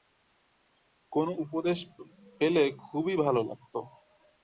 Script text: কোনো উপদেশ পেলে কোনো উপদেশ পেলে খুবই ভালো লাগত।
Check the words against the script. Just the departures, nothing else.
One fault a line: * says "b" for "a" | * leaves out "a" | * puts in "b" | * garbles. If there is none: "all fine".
* leaves out "কোনো উপদেশ পেলে"